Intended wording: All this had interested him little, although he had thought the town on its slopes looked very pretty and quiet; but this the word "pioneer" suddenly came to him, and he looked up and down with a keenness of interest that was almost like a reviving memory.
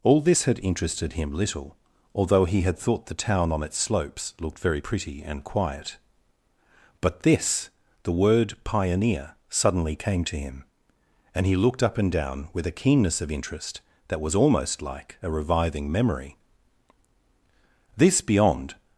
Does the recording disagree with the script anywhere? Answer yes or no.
yes